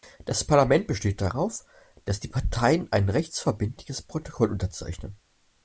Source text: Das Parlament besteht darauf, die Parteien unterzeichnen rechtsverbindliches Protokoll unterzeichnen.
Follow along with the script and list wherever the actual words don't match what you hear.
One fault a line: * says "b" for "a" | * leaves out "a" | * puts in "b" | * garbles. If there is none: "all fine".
* puts in "dass"
* says "ein" for "unterzeichnen"